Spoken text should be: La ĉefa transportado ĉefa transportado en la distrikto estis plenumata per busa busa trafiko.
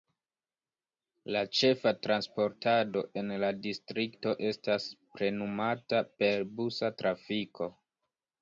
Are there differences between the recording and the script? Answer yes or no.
yes